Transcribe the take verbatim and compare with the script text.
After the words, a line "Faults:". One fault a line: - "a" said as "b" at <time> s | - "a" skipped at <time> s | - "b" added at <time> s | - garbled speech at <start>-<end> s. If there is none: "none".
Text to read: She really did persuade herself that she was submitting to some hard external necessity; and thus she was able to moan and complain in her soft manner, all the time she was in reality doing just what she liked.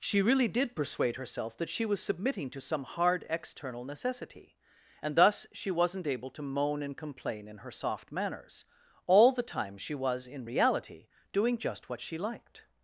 She really did persuade herself that she was submitting to some hard external necessity; and thus she wasn't able to moan and complain in her soft manners, all the time she was in reality doing just what she liked.
Faults:
- "was" said as "wasn't" at 5.7 s
- "manner" said as "manners" at 8.1 s